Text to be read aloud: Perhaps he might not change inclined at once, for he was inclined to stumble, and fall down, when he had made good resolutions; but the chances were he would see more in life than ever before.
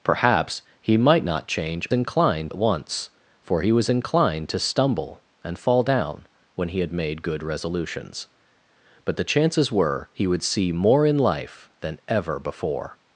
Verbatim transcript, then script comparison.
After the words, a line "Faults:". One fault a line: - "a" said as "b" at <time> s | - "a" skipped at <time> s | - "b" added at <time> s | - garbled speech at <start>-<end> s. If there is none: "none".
Perhaps he might not change inclined at once, for he was inclined to stumble, and fall down, when he had made good resolutions; but the chances were he would see more in life than ever before.
Faults:
none